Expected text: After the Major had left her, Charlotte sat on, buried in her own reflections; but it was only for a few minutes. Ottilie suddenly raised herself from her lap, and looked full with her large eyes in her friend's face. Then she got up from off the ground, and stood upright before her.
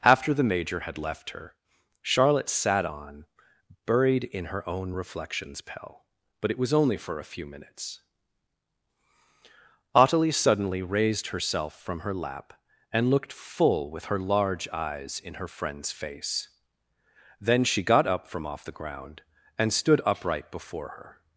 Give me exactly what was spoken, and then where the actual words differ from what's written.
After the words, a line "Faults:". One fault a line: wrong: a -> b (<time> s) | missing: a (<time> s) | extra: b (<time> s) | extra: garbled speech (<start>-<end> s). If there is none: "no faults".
After the Major had left her, Charlotte sat on, buried in her own reflections; pell but it was only for a few minutes. Ottilie suddenly raised herself from her lap, and looked full with her large eyes in her friend's face. Then she got up from off the ground, and stood upright before her.
Faults:
extra: pell (5.6 s)